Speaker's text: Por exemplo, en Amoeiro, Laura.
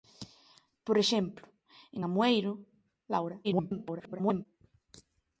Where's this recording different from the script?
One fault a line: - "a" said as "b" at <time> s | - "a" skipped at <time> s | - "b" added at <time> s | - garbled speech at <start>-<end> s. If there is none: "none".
- garbled speech at 3.4-4.5 s